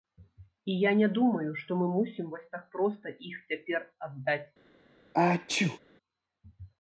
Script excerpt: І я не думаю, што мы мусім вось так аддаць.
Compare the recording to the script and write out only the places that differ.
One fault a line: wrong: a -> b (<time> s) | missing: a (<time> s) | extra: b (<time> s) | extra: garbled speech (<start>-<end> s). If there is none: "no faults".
extra: проста іх цяпер (2.8 s)